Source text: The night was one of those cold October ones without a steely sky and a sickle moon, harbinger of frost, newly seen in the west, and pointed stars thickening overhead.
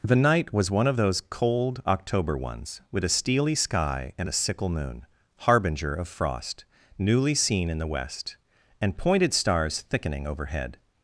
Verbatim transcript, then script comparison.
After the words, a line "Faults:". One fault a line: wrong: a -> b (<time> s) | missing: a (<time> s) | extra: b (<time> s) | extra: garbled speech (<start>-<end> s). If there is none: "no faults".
The night was one of those cold October ones with a steely sky and a sickle moon, harbinger of frost, newly seen in the west, and pointed stars thickening overhead.
Faults:
wrong: without -> with (2.9 s)